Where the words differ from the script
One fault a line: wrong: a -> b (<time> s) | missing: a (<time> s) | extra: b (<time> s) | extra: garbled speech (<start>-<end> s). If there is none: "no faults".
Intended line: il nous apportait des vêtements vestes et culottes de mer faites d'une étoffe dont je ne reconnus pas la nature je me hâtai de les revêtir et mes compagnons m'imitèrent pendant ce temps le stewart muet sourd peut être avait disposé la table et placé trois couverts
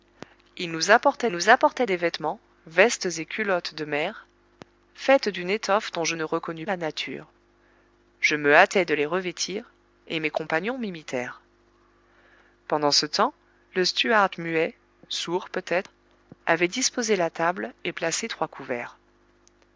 extra: nous apportait (1.3 s)
missing: pas (6.7 s)